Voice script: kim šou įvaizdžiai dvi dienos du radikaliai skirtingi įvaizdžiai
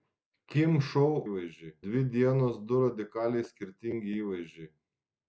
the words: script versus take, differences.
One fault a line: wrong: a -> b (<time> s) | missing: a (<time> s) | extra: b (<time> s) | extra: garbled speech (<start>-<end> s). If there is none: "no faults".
no faults